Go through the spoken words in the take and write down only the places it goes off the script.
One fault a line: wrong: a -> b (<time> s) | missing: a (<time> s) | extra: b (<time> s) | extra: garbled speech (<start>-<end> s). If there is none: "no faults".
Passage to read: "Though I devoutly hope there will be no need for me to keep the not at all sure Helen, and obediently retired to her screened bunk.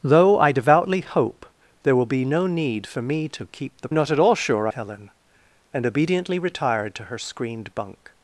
no faults